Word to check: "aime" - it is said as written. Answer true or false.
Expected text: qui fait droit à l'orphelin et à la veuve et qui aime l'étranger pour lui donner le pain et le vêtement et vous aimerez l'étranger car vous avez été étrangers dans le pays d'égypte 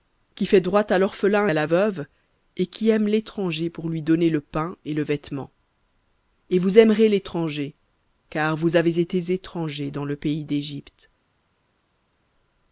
true